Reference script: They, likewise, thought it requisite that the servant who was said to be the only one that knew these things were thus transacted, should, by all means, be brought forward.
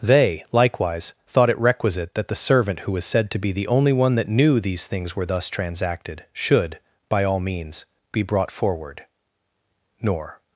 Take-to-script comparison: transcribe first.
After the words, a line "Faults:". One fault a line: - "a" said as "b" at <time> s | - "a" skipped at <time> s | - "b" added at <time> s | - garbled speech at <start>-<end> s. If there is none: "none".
They, likewise, thought it requisite that the servant who was said to be the only one that knew these things were thus transacted, should, by all means, be brought forward. Nor.
Faults:
- "Nor" added at 10.0 s